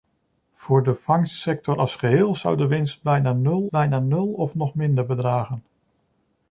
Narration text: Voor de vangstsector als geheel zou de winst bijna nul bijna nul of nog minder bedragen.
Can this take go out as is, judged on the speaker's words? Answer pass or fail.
pass